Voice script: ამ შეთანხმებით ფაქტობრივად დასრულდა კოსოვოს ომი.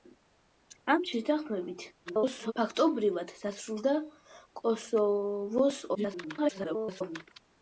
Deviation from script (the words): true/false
true